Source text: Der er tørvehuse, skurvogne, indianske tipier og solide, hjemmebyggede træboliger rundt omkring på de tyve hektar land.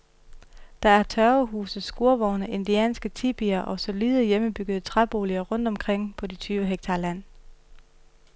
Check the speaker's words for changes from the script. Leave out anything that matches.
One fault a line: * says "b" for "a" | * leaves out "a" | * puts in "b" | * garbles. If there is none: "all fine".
all fine